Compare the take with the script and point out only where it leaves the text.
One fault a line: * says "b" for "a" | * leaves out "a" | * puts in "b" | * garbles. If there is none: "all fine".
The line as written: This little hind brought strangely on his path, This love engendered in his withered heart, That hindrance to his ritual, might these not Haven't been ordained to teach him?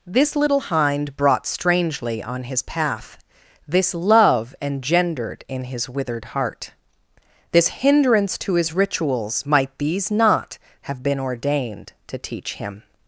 * says "This" for "That"
* says "rituals" for "ritual"
* says "Have" for "Haven't"